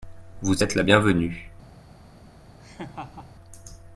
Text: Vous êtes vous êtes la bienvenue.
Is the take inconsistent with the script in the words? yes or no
yes